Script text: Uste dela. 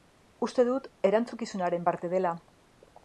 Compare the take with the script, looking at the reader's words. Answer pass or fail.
fail